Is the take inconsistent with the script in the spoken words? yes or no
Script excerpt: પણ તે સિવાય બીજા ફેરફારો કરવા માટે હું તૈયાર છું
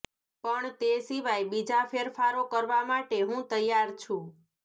no